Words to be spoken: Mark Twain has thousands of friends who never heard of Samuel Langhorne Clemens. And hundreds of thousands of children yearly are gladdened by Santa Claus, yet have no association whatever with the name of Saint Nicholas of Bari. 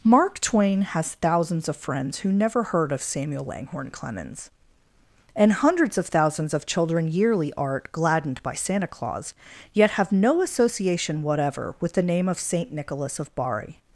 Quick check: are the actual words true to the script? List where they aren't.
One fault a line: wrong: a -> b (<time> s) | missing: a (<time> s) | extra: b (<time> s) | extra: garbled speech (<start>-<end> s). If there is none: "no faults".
wrong: are -> art (7.5 s)